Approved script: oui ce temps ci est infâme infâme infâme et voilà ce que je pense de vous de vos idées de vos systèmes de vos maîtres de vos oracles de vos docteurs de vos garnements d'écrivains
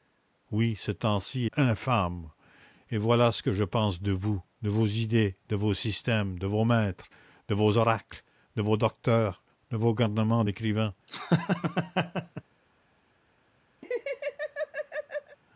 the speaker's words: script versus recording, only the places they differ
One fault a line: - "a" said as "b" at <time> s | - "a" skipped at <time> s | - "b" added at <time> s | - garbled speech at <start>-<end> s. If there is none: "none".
- "est infâme infâme" skipped at 1.4 s